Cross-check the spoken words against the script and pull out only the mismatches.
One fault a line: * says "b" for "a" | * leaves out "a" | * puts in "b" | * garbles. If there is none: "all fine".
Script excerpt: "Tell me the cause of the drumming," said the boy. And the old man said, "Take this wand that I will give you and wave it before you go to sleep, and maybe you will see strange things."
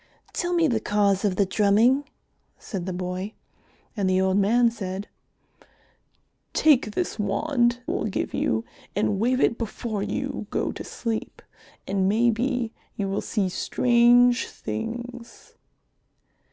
* leaves out "that I"